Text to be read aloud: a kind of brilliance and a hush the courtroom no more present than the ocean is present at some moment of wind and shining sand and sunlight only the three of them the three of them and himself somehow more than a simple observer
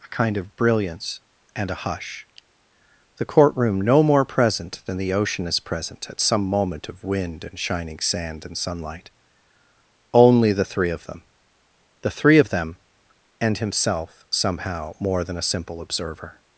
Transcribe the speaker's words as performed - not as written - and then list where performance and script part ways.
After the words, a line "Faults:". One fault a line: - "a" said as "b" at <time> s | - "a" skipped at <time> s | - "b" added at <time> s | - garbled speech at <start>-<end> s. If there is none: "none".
a kind of brilliance and a hush the courtroom no more present than the ocean is present at some moment of wind and shining sand and sunlight only the three of them the three of them and himself somehow more than a simple observer
Faults:
none